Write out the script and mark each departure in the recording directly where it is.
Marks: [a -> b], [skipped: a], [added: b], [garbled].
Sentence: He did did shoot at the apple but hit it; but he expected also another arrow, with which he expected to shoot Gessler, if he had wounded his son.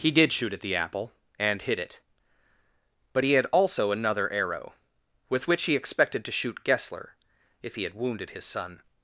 He did [skipped: did] shoot at the apple [but -> and] hit it; but he [expected -> had] also another arrow, with which he expected to shoot Gessler, if he had wounded his son.